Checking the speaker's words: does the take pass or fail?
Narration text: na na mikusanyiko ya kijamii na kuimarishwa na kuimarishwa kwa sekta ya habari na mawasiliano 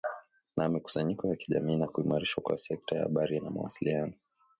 fail